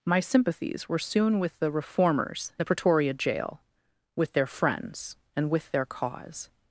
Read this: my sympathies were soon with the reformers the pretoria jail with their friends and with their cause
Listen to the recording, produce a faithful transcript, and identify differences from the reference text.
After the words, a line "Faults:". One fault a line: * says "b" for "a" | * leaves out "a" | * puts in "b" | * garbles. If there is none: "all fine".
my sympathies were soon with the reformers the pretoria jail with their friends and with their cause
Faults:
all fine